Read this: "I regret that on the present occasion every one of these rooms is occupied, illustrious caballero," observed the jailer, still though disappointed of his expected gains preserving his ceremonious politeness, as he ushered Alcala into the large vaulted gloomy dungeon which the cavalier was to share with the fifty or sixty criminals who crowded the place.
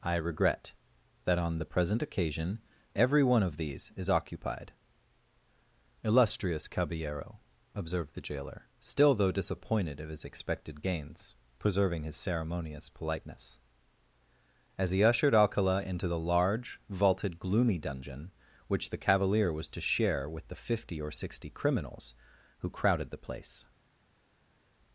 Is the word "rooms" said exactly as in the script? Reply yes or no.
no